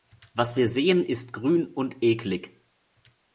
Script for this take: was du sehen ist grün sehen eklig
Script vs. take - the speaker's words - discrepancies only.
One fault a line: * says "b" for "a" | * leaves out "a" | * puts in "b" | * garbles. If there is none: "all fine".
* says "wir" for "du"
* says "und" for "sehen"